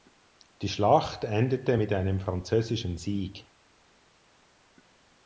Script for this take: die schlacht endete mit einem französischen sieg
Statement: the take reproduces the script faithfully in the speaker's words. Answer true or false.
true